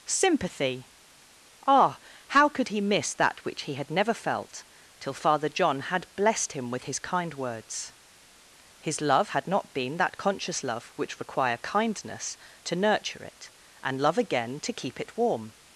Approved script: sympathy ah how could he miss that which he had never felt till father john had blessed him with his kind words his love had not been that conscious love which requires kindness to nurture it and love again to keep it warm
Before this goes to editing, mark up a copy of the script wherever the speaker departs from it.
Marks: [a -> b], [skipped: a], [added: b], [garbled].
sympathy ah how could he miss that which he had never felt till father john had blessed him with his kind words his love had not been that conscious love which [requires -> require] kindness to nurture it and love again to keep it warm